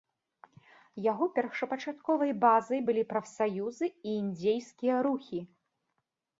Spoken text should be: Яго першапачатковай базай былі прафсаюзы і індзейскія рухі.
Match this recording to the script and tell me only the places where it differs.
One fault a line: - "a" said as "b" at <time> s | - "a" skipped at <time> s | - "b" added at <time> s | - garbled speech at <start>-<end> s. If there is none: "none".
none